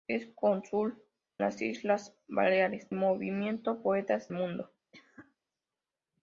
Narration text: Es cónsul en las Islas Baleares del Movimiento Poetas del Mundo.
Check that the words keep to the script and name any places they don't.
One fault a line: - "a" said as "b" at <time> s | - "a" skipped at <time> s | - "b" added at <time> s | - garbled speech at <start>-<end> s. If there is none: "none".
- "en" skipped at 1.0 s
- "del" skipped at 2.9 s
- "del" skipped at 4.3 s